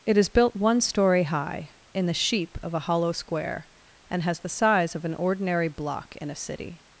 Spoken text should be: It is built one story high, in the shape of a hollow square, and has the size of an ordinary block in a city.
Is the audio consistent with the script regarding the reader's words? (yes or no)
no